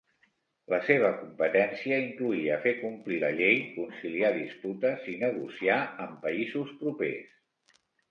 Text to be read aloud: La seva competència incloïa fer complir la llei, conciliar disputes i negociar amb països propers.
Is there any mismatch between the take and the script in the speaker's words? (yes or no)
no